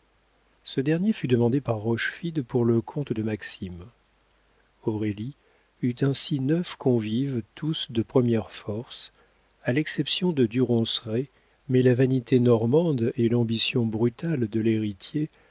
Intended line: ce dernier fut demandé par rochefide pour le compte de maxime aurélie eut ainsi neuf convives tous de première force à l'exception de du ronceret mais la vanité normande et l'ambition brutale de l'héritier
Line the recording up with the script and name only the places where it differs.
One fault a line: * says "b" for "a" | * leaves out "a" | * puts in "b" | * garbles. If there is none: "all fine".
all fine